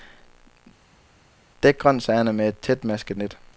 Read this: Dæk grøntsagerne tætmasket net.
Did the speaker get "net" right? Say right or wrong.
right